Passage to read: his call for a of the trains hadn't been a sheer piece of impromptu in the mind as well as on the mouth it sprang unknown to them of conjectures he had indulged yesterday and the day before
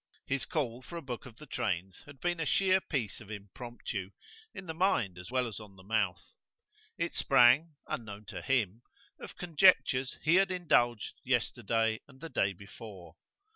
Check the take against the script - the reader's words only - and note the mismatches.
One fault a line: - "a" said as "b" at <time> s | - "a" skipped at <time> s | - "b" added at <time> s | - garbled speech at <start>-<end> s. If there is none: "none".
- "book" added at 1.0 s
- "hadn't" said as "had" at 2.1 s
- "them" said as "him" at 8.4 s